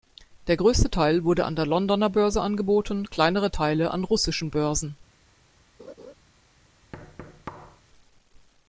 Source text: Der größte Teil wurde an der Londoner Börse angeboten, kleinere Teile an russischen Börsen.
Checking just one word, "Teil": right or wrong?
right